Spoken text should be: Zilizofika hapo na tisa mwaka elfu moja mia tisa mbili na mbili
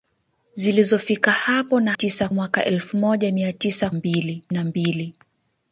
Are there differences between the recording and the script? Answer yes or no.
no